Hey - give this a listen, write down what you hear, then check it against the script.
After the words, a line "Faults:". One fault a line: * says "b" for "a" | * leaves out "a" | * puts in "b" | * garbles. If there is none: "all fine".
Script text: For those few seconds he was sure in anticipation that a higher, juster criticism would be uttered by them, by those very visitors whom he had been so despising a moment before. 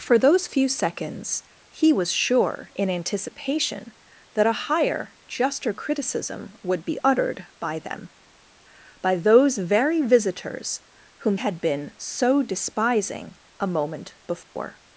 For those few seconds he was sure in anticipation that a higher, juster criticism would be uttered by them, by those very visitors whom had been so despising a moment before.
Faults:
* leaves out "he"